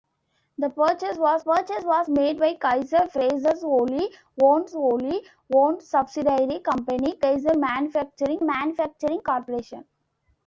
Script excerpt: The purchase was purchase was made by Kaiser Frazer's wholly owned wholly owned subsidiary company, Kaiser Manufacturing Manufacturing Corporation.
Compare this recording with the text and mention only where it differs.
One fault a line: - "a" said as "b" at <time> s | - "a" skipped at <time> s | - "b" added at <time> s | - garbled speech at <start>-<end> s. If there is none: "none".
none